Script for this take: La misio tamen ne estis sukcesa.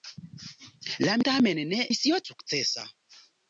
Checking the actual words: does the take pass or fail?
fail